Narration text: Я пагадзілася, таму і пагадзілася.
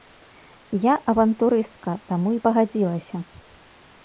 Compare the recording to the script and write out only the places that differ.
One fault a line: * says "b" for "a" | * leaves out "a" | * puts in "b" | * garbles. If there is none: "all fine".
* says "авантурыстка" for "пагадзілася"